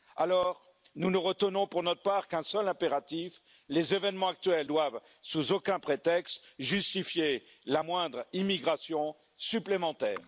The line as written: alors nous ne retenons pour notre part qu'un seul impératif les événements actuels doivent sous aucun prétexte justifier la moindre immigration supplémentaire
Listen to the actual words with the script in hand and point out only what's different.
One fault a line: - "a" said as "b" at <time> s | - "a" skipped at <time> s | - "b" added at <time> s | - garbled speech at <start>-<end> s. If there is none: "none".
none